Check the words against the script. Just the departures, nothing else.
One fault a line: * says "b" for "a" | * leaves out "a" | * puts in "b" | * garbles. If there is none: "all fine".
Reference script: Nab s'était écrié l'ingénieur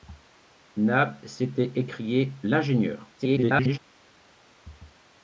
* garbles